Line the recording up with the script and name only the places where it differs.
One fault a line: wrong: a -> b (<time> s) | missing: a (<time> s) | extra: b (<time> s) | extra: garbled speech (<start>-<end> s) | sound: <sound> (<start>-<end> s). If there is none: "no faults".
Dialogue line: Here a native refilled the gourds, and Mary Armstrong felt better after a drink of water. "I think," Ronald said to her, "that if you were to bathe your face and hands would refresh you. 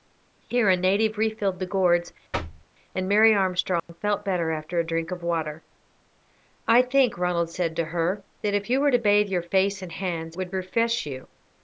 sound: thud (2.3-2.7 s)
sound: dropout (3.8-3.9 s)